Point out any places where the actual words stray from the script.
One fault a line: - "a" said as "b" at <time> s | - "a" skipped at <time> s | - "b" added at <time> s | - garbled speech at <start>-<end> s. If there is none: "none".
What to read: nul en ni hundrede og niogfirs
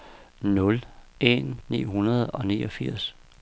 none